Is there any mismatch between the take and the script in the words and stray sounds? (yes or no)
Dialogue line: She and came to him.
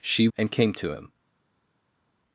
no